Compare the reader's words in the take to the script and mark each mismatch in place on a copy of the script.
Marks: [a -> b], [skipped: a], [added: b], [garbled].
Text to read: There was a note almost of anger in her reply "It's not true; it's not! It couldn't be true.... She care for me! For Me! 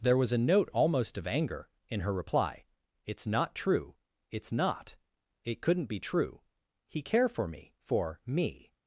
There was a note almost of anger in her reply "It's not true; it's not! It couldn't be true.... [She -> He] care for me! For Me!